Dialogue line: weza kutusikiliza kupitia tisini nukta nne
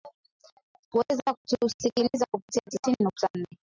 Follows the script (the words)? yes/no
yes